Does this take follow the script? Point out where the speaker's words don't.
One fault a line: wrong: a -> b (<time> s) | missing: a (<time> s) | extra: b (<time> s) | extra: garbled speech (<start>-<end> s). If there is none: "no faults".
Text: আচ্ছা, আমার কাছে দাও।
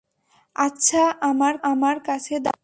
extra: আমার (1.6 s)